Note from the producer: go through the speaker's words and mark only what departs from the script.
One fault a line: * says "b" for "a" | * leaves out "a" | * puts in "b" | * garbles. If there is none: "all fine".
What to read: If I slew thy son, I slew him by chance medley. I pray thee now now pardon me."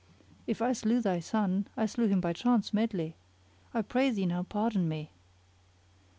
* leaves out "now"